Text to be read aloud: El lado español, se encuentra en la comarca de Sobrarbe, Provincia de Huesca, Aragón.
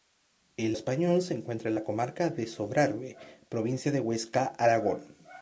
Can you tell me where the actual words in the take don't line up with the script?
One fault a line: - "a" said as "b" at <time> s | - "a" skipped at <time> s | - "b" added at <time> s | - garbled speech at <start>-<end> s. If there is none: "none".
- "lado" skipped at 0.8 s